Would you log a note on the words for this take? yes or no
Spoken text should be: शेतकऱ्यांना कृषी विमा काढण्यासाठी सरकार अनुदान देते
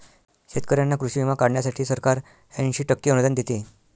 yes